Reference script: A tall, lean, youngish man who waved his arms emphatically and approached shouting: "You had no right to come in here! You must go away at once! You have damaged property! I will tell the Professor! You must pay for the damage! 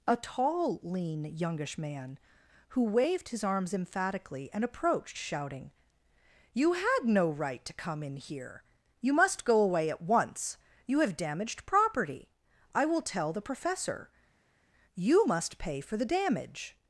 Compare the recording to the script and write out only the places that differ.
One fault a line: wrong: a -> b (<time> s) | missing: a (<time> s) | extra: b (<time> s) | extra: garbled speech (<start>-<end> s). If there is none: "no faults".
no faults